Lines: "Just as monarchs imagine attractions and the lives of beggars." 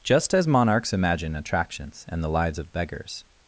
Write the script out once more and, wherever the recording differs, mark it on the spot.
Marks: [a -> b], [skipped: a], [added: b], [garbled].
"Just as monarchs imagine attractions and the lives of beggars."